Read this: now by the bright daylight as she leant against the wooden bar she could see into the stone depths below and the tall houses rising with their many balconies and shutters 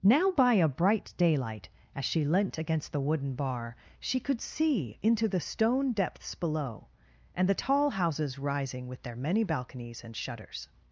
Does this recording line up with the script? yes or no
no